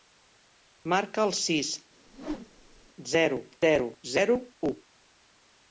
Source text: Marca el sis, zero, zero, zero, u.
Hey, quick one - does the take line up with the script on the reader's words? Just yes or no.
yes